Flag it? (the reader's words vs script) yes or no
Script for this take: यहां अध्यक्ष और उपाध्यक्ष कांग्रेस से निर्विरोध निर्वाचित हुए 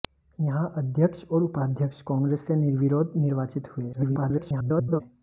yes